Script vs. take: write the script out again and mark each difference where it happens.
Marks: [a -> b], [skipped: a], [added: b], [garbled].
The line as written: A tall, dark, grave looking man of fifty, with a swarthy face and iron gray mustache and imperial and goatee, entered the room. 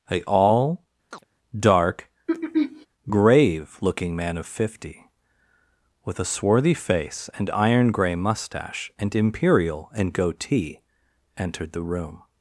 A [tall, -> all] dark, grave looking man of fifty, with a swarthy face and iron gray mustache and imperial and goatee, entered the room.